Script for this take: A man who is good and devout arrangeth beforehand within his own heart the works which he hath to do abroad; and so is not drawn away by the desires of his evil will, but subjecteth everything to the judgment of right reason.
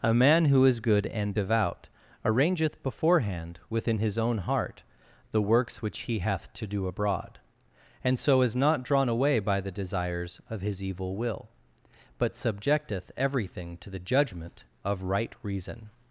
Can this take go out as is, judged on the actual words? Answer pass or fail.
pass